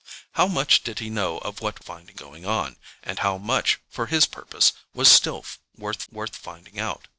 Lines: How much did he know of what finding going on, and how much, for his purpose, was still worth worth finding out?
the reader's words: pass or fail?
pass